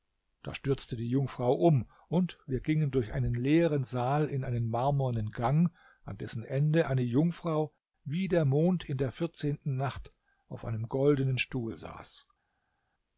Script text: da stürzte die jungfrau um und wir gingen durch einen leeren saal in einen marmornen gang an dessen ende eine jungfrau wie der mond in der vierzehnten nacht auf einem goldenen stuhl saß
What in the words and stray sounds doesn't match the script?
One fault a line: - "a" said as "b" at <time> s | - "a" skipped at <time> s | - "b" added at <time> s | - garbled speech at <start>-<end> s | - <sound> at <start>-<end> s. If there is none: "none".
none